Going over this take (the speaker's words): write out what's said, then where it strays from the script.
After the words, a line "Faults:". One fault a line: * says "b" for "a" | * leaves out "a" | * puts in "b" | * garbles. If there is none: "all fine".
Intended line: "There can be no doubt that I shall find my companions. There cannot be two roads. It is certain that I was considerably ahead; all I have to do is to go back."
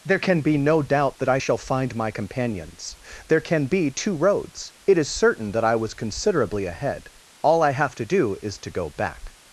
"There can be no doubt that I shall find my companions. There can be two roads. It is certain that I was considerably ahead; all I have to do is to go back."
Faults:
* says "can" for "cannot"